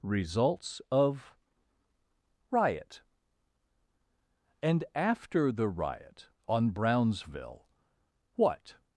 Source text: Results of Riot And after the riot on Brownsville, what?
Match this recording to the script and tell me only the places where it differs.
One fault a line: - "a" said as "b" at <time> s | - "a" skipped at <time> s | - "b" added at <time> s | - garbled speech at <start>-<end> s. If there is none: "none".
none